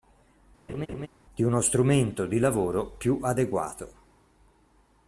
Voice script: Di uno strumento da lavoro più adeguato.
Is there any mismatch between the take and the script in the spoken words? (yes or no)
yes